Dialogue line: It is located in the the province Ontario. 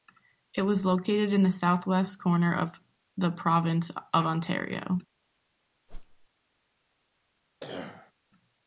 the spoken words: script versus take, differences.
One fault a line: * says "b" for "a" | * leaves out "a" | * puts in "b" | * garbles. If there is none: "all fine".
* says "was" for "is"
* puts in "southwest corner of"
* puts in "of"